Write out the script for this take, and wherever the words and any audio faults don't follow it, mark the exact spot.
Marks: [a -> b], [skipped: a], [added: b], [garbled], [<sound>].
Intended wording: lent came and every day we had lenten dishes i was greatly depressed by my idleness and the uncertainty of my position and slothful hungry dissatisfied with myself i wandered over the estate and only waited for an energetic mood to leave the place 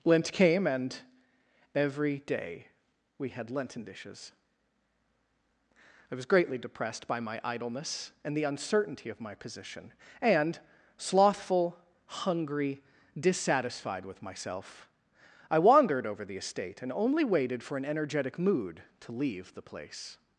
lent came and every day we had lenten dishes i was greatly depressed by my idleness and the uncertainty of my position and slothful hungry dissatisfied with myself i wandered over the estate and only waited for an energetic mood to leave the place